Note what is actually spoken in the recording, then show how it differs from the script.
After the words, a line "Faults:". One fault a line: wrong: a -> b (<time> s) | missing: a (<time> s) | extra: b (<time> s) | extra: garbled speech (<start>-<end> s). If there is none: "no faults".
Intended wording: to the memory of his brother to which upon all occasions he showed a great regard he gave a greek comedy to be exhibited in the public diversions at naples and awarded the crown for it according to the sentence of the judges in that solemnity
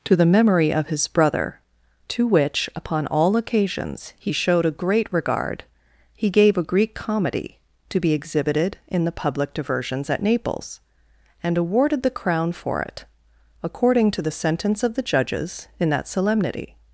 to the memory of his brother to which upon all occasions he showed a great regard he gave a greek comedy to be exhibited in the public diversions at naples and awarded the crown for it according to the sentence of the judges in that solemnity
Faults:
no faults